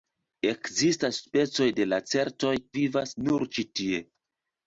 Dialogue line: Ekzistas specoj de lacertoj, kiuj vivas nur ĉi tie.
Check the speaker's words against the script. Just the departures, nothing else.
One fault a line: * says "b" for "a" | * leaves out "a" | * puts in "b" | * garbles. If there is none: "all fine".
* leaves out "kiuj"